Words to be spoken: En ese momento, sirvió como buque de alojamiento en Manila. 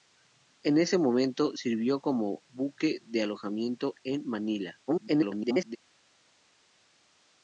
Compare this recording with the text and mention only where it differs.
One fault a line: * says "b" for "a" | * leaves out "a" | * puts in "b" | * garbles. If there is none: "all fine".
* garbles